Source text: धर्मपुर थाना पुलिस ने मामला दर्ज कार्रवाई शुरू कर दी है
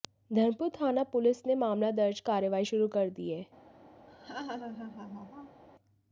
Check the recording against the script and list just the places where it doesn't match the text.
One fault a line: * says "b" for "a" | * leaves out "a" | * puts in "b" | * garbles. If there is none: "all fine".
all fine